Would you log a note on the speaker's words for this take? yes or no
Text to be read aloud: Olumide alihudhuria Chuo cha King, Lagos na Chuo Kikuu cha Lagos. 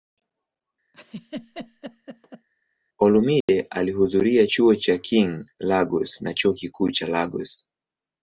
no